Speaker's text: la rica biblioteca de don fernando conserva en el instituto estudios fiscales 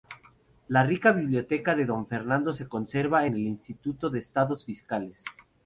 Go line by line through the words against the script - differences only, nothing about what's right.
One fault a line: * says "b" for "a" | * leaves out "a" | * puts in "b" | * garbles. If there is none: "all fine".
* puts in "se"
* puts in "de"